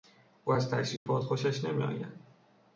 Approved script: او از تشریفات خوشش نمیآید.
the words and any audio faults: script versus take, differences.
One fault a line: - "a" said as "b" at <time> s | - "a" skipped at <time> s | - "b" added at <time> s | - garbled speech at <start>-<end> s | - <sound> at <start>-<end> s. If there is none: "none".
- dropout at 1.0-1.1 s